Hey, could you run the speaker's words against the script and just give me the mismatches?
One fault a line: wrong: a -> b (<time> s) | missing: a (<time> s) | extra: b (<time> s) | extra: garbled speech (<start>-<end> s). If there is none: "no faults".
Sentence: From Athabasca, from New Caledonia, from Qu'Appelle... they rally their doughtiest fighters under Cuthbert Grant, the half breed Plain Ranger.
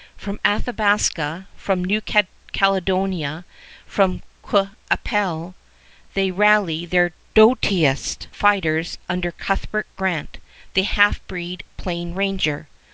no faults